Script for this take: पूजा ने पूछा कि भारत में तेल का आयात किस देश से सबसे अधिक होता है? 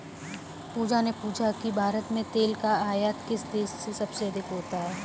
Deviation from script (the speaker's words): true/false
false